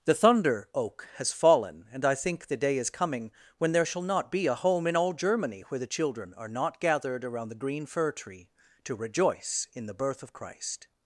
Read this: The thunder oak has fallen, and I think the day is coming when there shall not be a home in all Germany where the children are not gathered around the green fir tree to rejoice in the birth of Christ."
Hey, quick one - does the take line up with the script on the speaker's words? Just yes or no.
yes